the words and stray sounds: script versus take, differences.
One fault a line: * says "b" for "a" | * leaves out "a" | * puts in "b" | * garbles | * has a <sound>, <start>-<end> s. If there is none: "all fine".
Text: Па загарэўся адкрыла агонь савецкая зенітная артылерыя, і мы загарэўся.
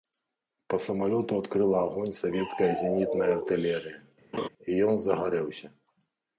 * says "самалёту" for "загарэўся"
* has a laugh, 4.3-4.5 s
* says "ён" for "мы"